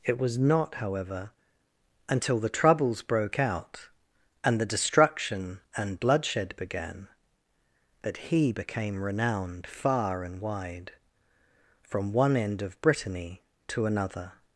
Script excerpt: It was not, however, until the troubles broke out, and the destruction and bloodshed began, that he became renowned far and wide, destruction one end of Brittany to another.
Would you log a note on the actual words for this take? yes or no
yes